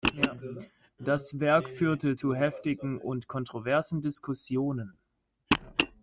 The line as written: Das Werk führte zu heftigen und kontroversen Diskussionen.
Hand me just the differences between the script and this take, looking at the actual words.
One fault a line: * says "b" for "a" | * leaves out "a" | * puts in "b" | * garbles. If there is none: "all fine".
all fine